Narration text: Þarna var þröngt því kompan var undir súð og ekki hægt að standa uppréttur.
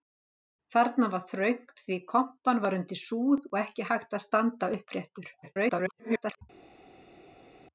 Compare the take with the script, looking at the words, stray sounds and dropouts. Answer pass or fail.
fail